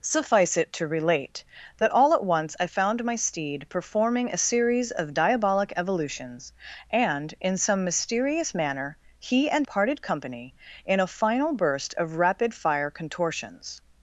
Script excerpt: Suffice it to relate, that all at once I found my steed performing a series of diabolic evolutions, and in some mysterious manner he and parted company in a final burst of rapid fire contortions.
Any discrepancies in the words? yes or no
no